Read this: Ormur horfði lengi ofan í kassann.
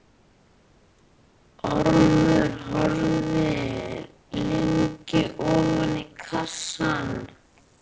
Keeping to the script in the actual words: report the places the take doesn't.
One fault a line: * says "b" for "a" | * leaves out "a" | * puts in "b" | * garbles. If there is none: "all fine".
all fine